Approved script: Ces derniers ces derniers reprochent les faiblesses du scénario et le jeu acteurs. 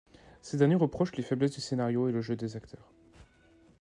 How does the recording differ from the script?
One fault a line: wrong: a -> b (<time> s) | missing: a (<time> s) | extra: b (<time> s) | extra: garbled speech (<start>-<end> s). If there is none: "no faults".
missing: ces derniers (0.7 s)
extra: des (2.4 s)